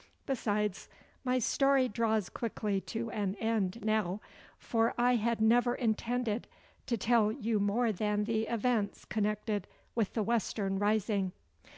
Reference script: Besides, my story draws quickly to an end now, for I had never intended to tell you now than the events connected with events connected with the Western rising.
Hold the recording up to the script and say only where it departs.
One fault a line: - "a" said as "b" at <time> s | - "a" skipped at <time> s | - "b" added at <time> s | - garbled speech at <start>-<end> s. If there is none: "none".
- "now" said as "more" at 7.6 s
- "events connected with" skipped at 10.1 s